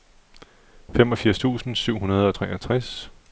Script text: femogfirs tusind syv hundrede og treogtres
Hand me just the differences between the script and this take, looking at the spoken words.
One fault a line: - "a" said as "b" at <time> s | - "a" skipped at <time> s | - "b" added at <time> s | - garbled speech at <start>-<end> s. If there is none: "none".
none